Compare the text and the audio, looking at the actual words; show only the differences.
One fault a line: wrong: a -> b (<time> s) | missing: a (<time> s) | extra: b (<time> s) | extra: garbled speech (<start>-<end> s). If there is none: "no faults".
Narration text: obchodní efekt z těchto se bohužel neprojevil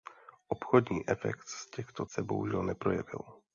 no faults